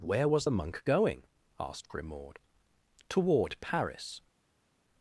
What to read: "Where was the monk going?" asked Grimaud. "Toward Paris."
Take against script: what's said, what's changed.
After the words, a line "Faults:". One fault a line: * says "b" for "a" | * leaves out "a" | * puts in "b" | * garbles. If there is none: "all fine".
"Where was the monk going?" asked Grimaud. "Toward Paris."
Faults:
all fine